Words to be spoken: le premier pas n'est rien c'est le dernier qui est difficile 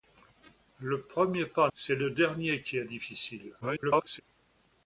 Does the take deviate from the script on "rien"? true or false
true